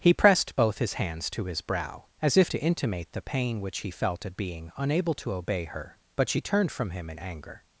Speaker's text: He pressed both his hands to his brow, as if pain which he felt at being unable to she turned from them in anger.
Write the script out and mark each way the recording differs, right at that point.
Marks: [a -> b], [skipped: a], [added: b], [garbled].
He pressed both his hands to his brow, as if [added: to intimate the] pain which he felt at being unable to [added: obey her but] she turned from [them -> him] in anger.